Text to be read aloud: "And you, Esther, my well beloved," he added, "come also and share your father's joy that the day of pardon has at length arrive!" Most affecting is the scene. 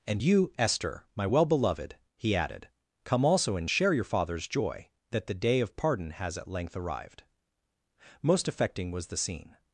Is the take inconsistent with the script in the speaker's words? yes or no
yes